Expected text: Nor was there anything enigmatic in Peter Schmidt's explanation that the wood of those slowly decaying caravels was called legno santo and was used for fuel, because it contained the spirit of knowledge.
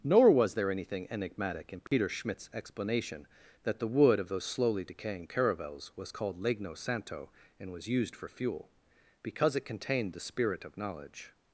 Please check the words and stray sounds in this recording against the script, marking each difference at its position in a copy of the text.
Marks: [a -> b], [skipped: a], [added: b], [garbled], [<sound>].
Nor was there anything enigmatic in Peter [dropout] Schmidt's explanation that the wood of those slowly decaying caravels was called legno santo and was used for fuel, because it contained the spirit of knowledge.